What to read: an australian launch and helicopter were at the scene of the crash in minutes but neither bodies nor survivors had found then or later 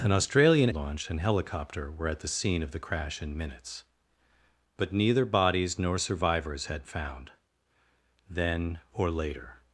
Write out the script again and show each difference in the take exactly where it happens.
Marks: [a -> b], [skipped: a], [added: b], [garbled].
an australian launch and helicopter were at the scene of the crash in minutes but neither bodies nor survivors had found then or later